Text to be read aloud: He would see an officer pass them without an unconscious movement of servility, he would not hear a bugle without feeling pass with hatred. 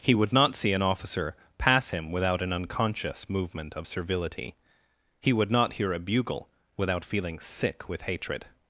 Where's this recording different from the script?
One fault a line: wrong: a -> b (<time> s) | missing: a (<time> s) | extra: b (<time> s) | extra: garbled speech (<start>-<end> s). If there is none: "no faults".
extra: not (0.3 s)
wrong: them -> him (1.9 s)
wrong: pass -> sick (7.4 s)